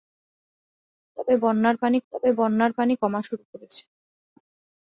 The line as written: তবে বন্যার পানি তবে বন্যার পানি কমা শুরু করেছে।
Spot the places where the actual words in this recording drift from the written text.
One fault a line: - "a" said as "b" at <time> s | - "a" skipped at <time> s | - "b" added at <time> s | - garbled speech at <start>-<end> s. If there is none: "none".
none